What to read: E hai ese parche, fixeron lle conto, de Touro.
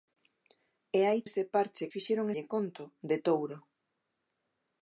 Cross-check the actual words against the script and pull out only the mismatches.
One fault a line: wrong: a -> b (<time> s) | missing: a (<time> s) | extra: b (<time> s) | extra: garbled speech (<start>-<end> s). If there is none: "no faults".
no faults